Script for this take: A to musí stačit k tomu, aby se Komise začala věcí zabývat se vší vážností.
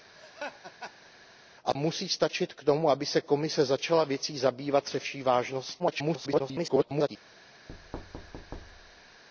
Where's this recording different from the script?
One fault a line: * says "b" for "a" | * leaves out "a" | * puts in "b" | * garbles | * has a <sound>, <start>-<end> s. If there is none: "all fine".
* has a laugh, 0.2-1.1 s
* leaves out "to"
* garbles
* has a thud, 7.7-9.2 s